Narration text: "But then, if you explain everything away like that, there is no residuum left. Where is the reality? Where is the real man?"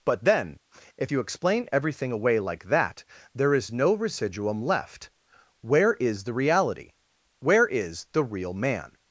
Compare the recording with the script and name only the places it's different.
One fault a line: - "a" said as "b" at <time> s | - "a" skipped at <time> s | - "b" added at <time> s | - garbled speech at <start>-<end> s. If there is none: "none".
none